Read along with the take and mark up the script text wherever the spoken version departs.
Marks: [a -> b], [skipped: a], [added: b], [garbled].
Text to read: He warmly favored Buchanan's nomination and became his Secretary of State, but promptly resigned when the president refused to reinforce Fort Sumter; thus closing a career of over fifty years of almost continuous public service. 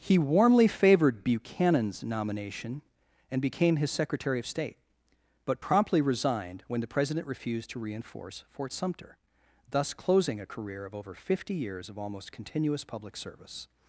He warmly favored Buchanan's nomination and became his Secretary of State, but promptly resigned when the president refused to reinforce Fort Sumter; thus closing a career of over fifty years of almost continuous public service.